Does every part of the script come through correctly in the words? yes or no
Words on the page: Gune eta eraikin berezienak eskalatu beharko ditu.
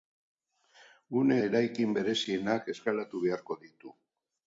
no